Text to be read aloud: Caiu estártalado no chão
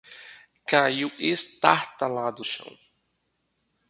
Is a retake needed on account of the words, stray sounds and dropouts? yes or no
yes